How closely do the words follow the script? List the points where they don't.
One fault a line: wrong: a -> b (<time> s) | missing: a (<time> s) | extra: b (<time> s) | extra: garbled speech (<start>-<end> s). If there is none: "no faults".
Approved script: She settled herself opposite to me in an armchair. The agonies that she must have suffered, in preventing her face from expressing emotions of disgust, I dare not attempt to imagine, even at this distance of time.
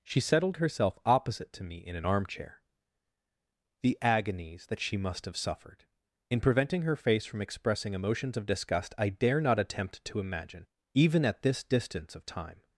no faults